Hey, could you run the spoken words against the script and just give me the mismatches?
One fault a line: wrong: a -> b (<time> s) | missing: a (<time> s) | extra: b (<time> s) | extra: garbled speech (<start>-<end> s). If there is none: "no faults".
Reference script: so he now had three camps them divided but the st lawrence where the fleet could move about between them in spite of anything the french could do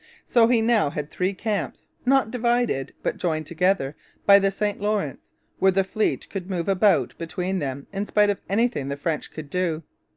wrong: them -> not (2.1 s)
extra: joined together by (3.2 s)